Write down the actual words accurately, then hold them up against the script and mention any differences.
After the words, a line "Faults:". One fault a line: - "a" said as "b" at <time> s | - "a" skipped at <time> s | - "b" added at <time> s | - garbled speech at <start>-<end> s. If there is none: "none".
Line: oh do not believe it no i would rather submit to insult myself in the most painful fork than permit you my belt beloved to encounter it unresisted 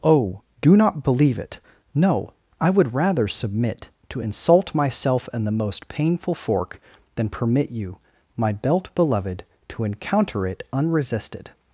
oh do not believe it no i would rather submit to insult myself in the most painful fork than permit you my belt beloved to encounter it unresisted
Faults:
none